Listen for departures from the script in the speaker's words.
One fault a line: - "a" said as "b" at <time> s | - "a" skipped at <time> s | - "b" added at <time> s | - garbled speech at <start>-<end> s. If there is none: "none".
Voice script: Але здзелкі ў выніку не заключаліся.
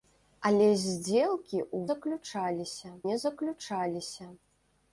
- "выніку" said as "заключаліся" at 1.9 s